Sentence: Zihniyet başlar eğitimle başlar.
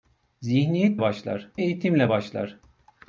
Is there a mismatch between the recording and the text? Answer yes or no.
no